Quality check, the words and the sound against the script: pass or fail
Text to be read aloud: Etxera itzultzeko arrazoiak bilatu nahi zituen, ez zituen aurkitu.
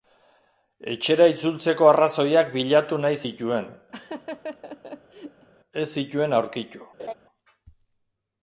fail